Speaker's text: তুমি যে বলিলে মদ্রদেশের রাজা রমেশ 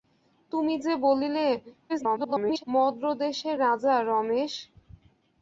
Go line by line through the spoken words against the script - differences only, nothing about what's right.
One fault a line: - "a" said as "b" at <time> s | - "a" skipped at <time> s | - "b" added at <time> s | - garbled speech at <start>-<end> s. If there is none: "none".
- garbled speech at 1.9-2.6 s